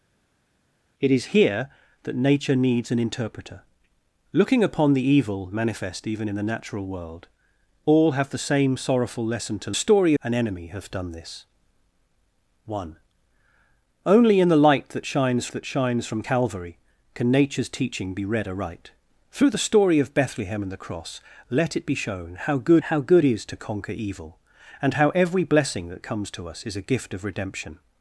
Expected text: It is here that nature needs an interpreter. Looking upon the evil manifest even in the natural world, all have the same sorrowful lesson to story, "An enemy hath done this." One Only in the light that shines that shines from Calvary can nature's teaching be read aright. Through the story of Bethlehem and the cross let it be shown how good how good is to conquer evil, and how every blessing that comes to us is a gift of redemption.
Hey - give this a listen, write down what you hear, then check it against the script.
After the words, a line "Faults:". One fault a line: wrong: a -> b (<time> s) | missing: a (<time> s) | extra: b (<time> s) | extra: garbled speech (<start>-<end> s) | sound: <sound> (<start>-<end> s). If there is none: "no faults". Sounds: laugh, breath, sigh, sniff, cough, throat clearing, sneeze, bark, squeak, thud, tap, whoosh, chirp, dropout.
It is here that nature needs an interpreter. Looking upon the evil manifest even in the natural world, all have the same sorrowful lesson to story, "An enemy hath done this." One Only in the light that shines that shines from Calvary can nature's teaching be read aright. Through the story of Bethlehem and the cross let it be shown how good how good is to conquer evil, and how every blessing that comes to us is a gift of redemption.
Faults:
no faults